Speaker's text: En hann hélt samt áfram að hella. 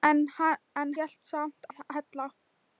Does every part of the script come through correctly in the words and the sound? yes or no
no